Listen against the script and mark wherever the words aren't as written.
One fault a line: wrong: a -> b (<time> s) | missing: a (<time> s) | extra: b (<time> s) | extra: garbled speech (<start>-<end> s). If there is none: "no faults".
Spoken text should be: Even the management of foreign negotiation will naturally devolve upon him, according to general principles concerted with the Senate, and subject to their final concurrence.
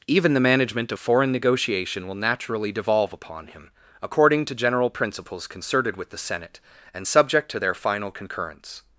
no faults